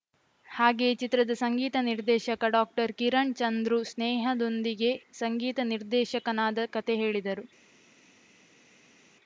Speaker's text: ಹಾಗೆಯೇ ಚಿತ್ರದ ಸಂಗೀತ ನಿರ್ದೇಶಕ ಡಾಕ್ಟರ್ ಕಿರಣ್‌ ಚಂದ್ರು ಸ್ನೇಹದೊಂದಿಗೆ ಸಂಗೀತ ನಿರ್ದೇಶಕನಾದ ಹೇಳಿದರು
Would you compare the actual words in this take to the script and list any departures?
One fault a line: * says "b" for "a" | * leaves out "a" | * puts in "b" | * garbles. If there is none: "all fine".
* puts in "ಕತೆ"